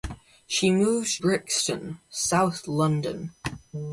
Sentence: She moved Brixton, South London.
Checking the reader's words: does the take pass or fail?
pass